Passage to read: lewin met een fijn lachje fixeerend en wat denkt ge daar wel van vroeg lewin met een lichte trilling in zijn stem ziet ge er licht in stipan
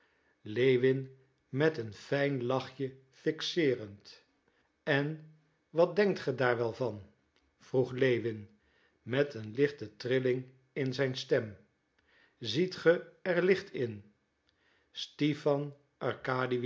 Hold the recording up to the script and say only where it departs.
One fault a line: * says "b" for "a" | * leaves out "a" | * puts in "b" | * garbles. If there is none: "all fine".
all fine